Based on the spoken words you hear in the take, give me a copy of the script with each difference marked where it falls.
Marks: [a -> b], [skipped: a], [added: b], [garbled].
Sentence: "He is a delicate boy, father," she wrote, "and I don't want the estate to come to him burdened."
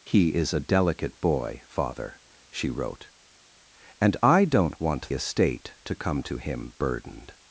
"He is a delicate boy, father," she wrote, "and I don't want [skipped: the] estate to come to him burdened."